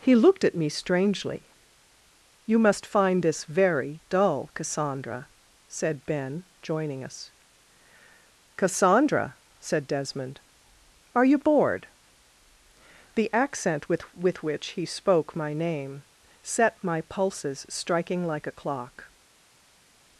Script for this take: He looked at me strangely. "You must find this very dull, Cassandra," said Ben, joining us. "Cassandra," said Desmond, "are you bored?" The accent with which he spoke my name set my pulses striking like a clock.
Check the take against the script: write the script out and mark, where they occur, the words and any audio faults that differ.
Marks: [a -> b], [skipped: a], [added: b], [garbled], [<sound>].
He looked at me strangely. "You must find this very dull, Cassandra," said Ben, joining us. "Cassandra," said Desmond, "are you bored?" The accent with [added: with] which he spoke my name set my pulses striking like a clock.